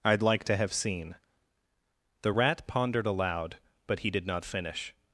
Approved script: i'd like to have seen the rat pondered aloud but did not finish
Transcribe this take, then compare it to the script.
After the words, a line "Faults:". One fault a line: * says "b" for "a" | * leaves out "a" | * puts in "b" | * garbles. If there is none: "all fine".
i'd like to have seen the rat pondered aloud but he did not finish
Faults:
* puts in "he"